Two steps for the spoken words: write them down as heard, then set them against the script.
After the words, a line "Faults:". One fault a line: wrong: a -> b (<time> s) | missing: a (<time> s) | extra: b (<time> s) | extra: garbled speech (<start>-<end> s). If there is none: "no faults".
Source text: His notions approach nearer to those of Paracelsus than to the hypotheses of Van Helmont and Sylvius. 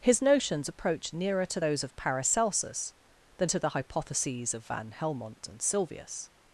His notions approach nearer to those of Paracelsus than to the hypotheses of Van Helmont and Sylvius.
Faults:
no faults